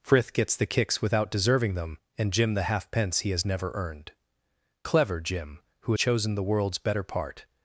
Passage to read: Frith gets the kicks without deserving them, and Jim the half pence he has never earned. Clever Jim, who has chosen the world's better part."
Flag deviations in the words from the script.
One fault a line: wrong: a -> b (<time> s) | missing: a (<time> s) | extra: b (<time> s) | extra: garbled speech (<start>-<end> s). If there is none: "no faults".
missing: has (5.9 s)